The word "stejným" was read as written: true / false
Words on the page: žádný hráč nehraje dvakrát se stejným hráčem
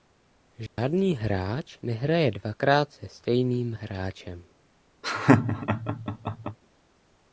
true